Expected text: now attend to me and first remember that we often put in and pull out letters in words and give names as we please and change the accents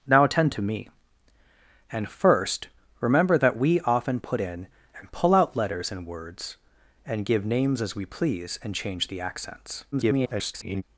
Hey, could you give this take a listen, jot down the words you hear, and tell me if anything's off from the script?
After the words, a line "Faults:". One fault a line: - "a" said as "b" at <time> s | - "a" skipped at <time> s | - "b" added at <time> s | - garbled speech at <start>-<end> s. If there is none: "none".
now attend to me and first remember that we often put in and pull out letters in words and give names as we please and change the accents [garbled]
Faults:
- garbled speech at 9.9-10.8 s